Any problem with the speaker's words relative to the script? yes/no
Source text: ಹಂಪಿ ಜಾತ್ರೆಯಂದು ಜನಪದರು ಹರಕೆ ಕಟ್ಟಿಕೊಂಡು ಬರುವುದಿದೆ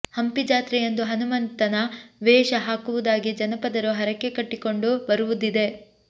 yes